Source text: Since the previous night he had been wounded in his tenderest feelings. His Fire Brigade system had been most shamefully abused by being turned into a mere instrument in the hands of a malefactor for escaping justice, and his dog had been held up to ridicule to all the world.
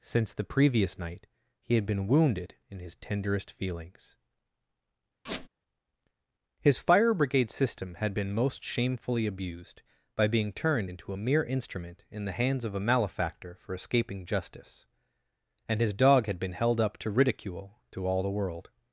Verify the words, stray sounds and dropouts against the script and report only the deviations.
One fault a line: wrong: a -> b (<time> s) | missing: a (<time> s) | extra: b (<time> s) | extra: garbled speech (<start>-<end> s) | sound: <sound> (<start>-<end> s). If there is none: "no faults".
sound: squeak (5.3-5.5 s)